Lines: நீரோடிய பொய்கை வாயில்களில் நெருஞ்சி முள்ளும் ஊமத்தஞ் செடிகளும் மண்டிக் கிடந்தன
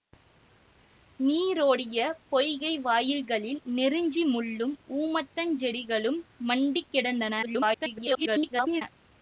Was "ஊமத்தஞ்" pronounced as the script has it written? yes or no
yes